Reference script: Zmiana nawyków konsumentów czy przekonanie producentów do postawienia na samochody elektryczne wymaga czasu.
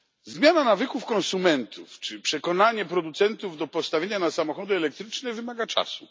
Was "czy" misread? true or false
false